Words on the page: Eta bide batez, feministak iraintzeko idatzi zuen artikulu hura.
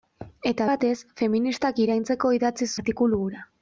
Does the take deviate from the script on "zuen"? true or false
true